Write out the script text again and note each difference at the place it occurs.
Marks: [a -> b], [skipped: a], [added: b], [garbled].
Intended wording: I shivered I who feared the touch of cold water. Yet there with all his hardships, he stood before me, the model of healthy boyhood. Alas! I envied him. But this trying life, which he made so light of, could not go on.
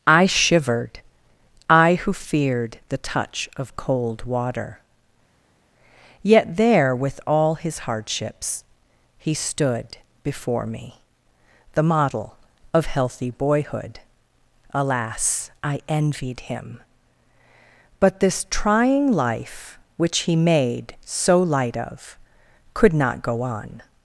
I shivered I who feared the touch of cold water. Yet there with all his hardships, he stood before me, the model of healthy boyhood. Alas! I envied him. But this trying life, which he made so light of, could not go on.